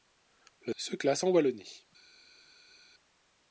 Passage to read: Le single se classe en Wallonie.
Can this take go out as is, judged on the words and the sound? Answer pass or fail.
fail